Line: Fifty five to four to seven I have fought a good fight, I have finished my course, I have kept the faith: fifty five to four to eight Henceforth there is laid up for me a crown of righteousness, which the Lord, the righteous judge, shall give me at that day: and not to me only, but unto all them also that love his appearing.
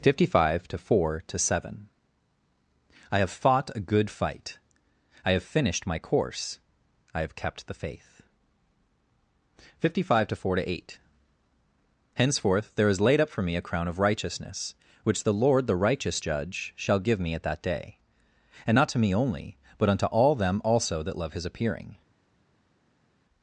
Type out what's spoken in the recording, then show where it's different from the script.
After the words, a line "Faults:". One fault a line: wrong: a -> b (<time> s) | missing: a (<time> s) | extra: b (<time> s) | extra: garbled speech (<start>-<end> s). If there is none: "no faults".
Fifty five to four to seven I have fought a good fight, I have finished my course, I have kept the faith: fifty five to four to eight Henceforth there is laid up for me a crown of righteousness, which the Lord, the righteous judge, shall give me at that day: and not to me only, but unto all them also that love his appearing.
Faults:
no faults